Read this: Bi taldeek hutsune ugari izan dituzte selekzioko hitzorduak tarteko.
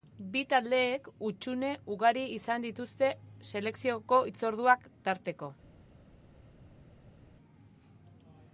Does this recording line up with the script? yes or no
yes